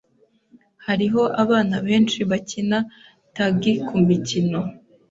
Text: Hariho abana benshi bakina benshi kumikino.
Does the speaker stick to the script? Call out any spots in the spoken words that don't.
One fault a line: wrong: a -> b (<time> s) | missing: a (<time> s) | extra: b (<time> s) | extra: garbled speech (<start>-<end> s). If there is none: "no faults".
wrong: benshi -> tagi (3.3 s)